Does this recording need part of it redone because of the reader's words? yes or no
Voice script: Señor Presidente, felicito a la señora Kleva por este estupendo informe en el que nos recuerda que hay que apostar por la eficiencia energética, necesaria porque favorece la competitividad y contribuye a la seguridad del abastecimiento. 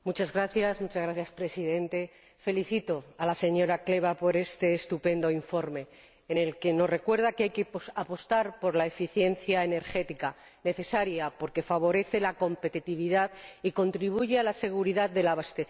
no